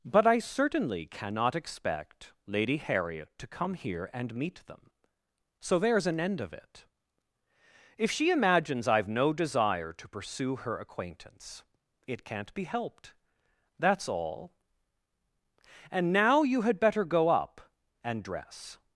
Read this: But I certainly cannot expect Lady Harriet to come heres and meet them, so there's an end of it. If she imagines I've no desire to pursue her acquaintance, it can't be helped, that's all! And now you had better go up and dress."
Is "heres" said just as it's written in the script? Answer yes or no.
no